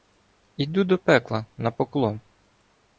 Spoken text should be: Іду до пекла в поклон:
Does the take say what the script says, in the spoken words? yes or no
no